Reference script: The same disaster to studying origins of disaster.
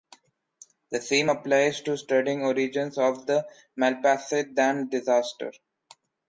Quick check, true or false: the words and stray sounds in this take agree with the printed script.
false